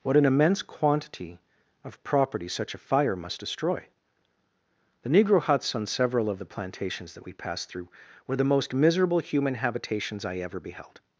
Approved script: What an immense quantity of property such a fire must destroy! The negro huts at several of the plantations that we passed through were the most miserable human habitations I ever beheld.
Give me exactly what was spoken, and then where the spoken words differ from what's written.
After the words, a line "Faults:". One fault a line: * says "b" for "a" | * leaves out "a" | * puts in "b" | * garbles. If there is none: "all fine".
What an immense quantity of property such a fire must destroy! The negro huts on several of the plantations that we passed through were the most miserable human habitations I ever beheld.
Faults:
* says "on" for "at"